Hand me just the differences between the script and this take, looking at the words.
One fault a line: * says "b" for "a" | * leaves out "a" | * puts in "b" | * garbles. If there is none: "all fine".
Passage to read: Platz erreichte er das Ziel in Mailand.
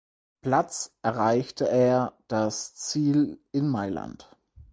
all fine